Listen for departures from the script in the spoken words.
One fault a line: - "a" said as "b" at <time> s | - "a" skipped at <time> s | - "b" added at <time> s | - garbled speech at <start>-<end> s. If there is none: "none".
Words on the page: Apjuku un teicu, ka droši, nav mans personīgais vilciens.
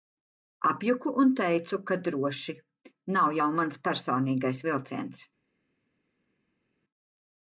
- "jau" added at 3.4 s